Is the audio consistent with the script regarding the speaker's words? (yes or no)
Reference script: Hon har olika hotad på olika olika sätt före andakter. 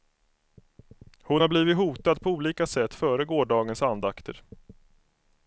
no